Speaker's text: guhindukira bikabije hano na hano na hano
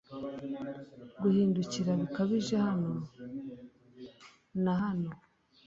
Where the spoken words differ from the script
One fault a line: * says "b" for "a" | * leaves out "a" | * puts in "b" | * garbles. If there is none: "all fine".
* leaves out "na hano"